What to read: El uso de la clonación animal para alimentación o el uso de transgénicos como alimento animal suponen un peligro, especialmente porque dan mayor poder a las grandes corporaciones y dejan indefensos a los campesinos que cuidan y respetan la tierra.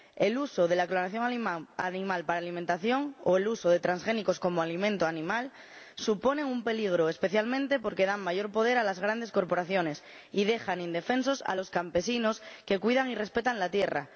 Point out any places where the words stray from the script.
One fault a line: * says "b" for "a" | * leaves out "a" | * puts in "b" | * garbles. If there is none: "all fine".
all fine